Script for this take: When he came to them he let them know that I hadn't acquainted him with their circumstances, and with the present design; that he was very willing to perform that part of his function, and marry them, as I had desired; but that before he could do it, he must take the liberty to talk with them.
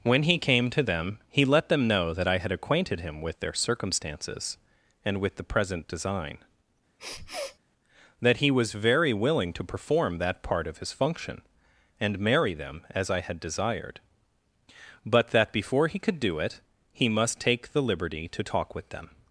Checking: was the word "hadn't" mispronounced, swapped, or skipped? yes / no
yes